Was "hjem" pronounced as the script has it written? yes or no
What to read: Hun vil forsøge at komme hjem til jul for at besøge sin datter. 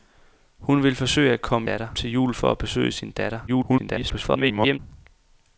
no